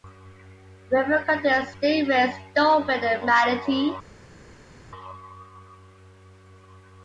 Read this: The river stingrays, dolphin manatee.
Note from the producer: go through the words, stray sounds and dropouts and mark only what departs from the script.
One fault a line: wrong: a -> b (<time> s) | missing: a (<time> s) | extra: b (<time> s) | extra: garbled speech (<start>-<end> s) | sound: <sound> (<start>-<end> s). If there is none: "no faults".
extra: contains (1.2 s)
extra: and (3.0 s)